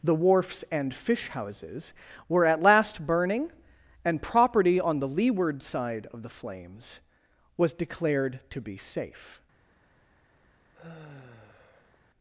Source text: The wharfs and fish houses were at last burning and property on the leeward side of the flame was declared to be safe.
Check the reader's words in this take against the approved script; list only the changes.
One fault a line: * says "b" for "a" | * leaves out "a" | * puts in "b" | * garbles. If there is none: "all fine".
* says "flames" for "flame"